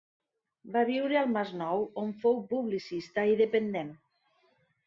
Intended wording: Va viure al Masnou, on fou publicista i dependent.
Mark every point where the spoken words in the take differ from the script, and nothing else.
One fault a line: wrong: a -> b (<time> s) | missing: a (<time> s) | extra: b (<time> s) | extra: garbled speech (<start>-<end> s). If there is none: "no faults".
no faults